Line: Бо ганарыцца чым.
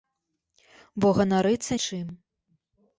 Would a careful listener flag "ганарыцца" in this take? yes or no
no